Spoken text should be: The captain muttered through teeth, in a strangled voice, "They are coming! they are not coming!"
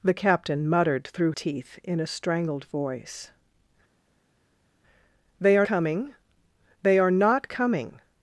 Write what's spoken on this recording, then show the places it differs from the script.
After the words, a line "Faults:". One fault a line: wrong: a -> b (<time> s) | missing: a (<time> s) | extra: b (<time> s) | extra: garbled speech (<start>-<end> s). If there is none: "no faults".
The captain muttered through teeth, in a strangled voice, "They are coming! they are not coming!"
Faults:
no faults